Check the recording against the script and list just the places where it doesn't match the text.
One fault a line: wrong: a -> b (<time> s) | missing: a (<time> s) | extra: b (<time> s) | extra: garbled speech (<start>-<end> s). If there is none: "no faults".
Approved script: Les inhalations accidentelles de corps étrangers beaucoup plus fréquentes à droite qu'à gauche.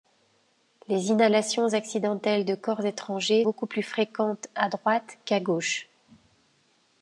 no faults